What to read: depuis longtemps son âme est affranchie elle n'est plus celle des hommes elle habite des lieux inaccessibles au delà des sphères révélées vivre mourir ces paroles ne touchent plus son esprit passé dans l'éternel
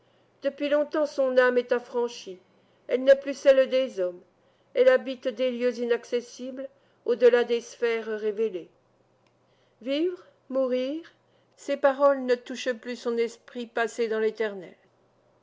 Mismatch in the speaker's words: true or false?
false